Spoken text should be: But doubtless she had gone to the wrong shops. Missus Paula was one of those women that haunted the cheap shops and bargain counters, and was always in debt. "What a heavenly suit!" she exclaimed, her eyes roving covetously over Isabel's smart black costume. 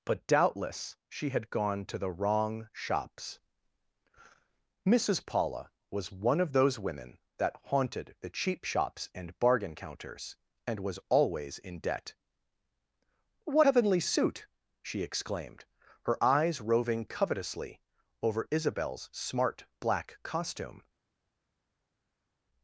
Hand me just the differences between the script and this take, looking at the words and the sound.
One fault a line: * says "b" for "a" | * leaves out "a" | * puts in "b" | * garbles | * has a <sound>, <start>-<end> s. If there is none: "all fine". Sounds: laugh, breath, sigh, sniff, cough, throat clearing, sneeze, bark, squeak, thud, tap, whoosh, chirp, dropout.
* leaves out "a"